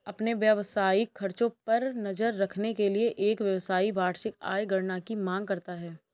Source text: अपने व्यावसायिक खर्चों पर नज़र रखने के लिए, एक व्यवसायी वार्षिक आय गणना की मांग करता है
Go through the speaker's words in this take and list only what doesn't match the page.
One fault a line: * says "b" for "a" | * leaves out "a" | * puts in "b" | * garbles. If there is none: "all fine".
all fine